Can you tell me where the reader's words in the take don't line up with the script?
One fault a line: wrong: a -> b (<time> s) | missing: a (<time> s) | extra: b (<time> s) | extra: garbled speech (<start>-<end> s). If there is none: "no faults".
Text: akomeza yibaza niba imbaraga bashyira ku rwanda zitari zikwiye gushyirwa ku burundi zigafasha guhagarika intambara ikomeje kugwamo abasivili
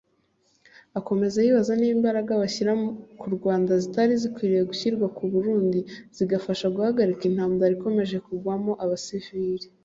no faults